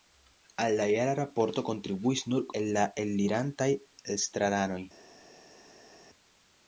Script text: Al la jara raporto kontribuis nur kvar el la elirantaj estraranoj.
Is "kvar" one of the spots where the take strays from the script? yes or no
yes